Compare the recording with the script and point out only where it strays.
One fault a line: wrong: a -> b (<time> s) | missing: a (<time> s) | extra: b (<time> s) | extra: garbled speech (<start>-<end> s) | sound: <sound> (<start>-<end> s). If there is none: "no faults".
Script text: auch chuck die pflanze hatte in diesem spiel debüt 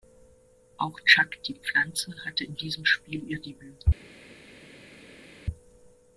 extra: ihr (3.3 s)